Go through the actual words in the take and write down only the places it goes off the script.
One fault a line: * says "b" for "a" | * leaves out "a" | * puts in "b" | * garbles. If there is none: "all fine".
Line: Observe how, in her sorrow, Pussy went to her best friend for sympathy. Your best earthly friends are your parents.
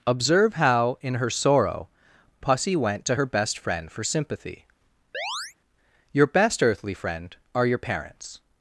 * says "friend" for "friends"